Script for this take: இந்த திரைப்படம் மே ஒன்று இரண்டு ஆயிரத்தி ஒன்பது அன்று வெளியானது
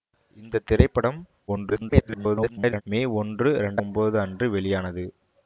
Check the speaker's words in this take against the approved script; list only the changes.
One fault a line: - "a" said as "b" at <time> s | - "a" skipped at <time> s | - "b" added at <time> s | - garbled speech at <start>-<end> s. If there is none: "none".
- garbled speech at 1.5-2.8 s
- "ஆயிரத்தி" skipped at 3.8 s